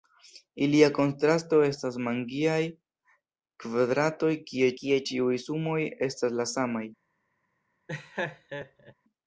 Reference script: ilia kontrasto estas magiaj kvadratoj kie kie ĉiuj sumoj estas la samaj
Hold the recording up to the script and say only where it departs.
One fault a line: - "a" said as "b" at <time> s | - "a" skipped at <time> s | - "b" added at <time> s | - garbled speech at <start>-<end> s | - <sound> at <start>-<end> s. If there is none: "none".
- laugh at 7.9-8.9 s